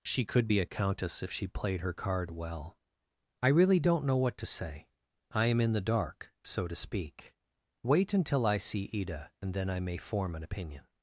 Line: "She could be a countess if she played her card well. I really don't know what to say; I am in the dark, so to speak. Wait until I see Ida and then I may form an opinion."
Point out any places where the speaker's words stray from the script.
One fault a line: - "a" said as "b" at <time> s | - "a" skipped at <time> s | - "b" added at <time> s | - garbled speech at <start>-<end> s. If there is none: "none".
none